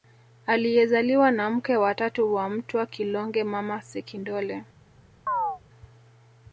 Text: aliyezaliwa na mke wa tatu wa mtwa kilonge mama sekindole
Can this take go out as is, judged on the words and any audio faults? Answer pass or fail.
fail